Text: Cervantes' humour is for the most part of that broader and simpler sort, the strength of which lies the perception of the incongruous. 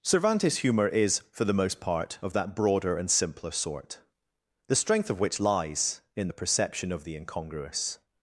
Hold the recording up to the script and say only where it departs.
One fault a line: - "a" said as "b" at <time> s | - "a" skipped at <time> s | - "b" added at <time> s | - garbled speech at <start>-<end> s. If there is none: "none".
- "in" added at 6.2 s